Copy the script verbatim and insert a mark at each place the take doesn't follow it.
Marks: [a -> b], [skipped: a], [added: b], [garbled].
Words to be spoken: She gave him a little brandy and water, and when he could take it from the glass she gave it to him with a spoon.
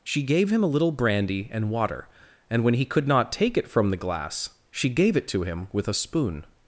She gave him a little brandy and water, and when he could [added: not] take it from the glass she gave it to him with a spoon.